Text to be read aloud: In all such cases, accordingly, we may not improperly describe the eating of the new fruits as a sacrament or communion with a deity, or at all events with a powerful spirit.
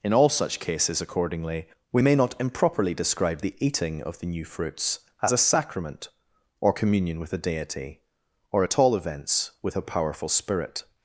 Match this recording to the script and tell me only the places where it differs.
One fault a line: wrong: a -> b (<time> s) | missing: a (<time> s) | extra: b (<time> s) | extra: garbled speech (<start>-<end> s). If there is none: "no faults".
no faults